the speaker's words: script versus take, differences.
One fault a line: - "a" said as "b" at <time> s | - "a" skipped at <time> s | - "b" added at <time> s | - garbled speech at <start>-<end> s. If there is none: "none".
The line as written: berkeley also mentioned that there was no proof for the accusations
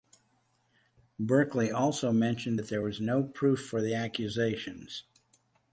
none